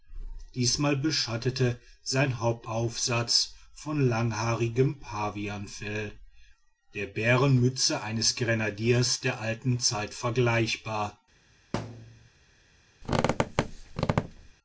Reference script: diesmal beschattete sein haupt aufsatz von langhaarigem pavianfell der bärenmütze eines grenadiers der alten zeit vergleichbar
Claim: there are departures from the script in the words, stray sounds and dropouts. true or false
true